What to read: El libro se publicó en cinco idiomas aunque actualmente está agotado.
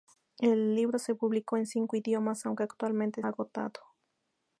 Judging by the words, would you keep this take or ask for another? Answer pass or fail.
fail